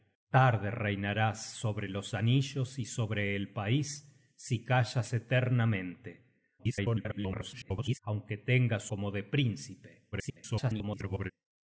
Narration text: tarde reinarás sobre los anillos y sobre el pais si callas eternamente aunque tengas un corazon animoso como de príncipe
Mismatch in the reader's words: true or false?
true